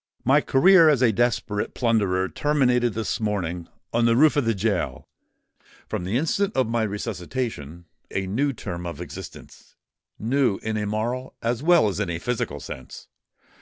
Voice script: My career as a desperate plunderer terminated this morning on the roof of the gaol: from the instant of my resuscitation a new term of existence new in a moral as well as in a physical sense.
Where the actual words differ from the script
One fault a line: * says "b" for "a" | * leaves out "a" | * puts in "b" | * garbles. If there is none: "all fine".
all fine